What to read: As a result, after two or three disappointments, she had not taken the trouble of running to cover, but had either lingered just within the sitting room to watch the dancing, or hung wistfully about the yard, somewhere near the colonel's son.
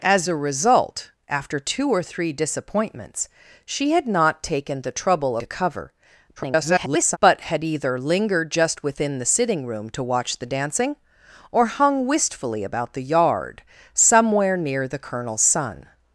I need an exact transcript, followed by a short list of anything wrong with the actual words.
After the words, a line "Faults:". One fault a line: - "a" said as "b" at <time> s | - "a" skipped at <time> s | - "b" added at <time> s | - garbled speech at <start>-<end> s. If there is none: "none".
As a result, after two or three disappointments, she had not taken the trouble to cover, [garbled] but had either lingered just within the sitting room to watch the dancing, or hung wistfully about the yard, somewhere near the colonel's son.
Faults:
- "of running" skipped at 5.4 s
- garbled speech at 6.4-7.2 s